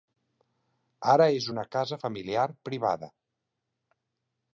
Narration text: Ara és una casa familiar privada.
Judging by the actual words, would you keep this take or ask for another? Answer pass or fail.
pass